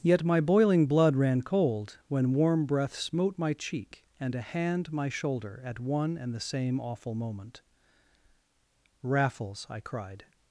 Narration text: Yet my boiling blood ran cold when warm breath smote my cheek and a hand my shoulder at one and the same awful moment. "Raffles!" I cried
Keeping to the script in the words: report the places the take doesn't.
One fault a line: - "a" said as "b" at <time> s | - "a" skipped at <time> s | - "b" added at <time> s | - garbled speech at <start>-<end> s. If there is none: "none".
none